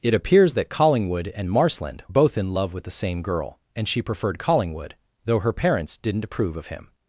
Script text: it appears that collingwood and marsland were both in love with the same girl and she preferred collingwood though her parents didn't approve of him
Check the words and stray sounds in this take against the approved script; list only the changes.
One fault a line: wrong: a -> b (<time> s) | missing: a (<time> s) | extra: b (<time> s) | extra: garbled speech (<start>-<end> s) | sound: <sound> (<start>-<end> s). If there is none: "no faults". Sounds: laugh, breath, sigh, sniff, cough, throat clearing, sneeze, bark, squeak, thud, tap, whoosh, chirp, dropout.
missing: were (2.0 s)